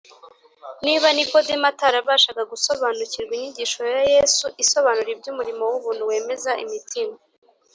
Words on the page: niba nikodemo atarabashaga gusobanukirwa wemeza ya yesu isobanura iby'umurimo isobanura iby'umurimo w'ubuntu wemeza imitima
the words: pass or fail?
fail